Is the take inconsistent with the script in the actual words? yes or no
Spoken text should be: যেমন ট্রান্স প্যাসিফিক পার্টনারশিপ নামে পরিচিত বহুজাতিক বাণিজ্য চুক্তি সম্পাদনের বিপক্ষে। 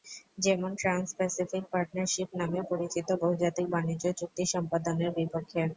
no